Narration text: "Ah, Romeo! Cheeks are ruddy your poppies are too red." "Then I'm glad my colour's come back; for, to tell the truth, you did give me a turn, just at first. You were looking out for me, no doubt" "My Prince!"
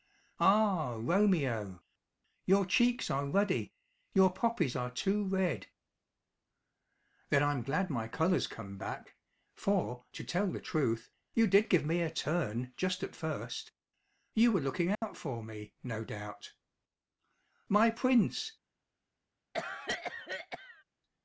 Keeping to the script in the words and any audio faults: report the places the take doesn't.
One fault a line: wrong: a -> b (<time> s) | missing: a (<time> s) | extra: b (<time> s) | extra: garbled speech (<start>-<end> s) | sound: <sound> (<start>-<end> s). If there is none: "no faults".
extra: Your (2.5 s)
sound: dropout (14.9-15.0 s)
sound: cough (19.5-20.8 s)